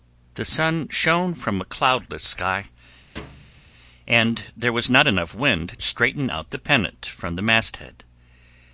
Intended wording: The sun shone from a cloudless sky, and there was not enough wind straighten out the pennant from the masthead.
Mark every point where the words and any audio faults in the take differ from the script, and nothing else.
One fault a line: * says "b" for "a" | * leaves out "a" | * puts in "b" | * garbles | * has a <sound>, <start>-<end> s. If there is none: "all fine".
* has a thud, 3.2-3.7 s